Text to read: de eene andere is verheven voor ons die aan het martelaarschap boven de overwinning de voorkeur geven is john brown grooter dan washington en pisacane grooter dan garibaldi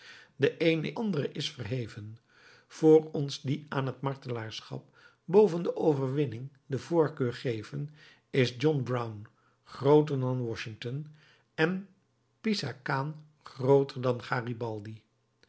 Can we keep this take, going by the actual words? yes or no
yes